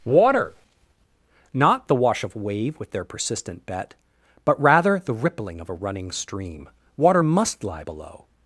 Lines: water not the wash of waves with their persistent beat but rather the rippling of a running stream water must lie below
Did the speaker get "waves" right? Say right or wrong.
wrong